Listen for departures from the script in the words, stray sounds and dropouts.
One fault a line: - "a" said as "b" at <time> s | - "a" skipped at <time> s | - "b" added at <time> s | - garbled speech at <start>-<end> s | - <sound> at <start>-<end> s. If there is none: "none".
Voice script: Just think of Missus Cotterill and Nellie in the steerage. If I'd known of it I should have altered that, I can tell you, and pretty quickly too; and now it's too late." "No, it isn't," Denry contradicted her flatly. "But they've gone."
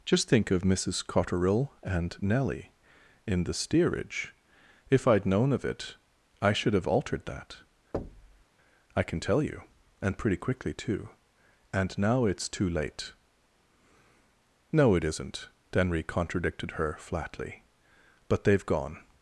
- thud at 7.9-8.4 s